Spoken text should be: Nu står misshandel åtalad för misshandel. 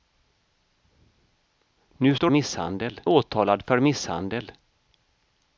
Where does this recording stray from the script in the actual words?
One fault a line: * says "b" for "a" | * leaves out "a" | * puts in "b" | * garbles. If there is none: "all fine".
all fine